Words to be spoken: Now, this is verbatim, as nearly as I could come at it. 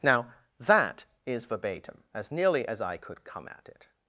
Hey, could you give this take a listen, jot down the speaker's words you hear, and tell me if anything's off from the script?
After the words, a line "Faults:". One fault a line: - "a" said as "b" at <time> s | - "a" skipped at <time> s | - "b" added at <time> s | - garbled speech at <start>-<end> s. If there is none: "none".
Now, that is verbatim, as nearly as I could come at it.
Faults:
- "this" said as "that" at 0.6 s